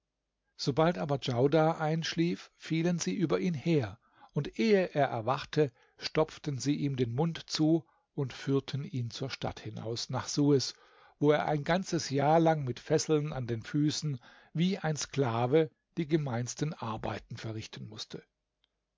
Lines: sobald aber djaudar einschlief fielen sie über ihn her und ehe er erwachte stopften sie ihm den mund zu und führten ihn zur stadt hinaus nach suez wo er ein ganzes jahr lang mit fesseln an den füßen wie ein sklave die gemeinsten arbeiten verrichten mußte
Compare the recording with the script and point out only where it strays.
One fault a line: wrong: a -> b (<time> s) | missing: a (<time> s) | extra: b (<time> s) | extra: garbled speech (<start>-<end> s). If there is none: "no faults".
no faults